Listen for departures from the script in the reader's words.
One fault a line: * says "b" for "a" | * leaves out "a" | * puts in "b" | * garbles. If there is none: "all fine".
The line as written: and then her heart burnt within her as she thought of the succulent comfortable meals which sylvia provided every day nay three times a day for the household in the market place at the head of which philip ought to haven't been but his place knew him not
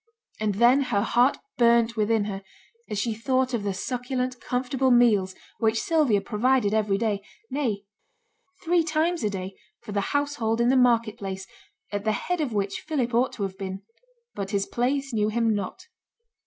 * says "have" for "haven't"